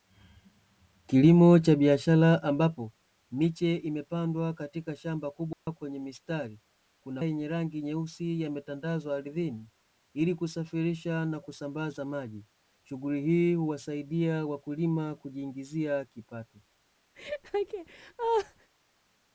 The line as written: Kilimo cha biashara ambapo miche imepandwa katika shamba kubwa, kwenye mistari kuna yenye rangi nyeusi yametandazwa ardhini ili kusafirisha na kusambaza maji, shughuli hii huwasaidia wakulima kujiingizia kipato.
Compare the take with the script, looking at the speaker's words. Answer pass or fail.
pass